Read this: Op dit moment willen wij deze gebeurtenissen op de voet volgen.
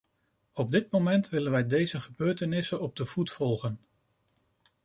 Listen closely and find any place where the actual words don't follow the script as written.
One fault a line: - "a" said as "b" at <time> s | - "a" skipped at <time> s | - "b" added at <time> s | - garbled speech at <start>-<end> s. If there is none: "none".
none